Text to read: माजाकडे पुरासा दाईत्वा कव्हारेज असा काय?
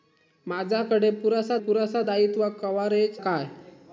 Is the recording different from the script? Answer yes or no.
yes